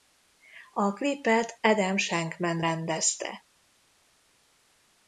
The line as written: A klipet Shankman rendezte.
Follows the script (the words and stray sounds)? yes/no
no